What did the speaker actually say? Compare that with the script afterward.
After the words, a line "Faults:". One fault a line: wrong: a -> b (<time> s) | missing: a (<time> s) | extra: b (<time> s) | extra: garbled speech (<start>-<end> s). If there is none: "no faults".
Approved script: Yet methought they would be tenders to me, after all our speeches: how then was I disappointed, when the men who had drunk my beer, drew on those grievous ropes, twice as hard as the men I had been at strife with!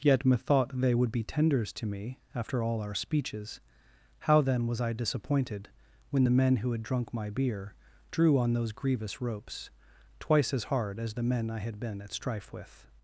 Yet methought they would be tenders to me, after all our speeches: how then was I disappointed, when the men who had drunk my beer, drew on those grievous ropes, twice as hard as the men I had been at strife with!
Faults:
no faults